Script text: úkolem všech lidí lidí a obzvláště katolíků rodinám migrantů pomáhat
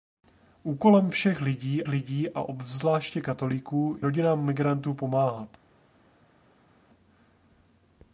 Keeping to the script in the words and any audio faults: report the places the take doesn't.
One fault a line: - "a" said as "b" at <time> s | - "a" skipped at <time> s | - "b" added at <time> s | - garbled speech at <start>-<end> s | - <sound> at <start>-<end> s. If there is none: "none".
none